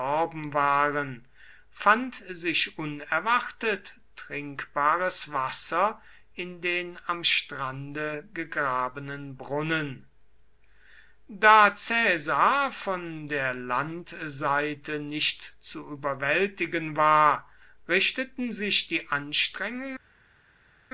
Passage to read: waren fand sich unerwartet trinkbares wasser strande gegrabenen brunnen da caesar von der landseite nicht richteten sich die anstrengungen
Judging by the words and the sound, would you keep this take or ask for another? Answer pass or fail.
fail